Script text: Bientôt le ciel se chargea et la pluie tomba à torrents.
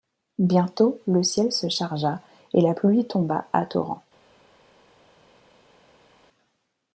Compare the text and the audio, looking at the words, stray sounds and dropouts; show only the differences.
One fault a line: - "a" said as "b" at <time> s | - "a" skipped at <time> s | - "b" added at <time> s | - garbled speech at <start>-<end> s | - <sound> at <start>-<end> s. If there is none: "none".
none